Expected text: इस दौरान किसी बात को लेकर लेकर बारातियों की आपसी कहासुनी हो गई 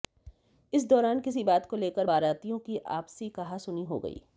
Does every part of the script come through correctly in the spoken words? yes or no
no